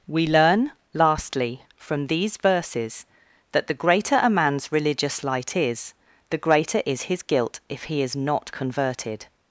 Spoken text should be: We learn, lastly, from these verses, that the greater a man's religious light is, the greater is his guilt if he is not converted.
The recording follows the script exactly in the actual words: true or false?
true